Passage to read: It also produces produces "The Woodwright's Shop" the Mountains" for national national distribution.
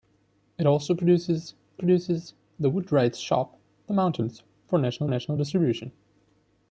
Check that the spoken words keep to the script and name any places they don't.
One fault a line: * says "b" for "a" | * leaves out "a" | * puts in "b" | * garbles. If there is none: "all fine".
all fine